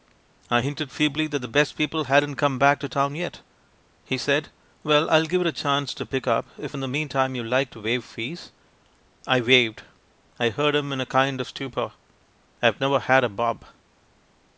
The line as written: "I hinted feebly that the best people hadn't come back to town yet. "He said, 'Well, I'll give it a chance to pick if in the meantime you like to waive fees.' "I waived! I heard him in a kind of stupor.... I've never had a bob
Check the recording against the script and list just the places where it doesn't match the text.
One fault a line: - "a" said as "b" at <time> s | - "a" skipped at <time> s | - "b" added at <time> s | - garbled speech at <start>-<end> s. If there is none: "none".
- "up" added at 6.2 s